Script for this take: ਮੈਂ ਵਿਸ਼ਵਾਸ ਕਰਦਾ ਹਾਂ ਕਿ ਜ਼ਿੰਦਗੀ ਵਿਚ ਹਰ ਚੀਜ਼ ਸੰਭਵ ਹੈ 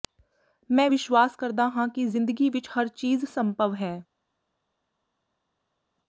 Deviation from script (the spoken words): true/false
false